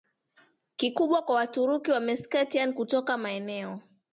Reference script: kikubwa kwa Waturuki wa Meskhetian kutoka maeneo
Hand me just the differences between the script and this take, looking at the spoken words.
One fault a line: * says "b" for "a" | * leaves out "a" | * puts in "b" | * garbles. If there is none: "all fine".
all fine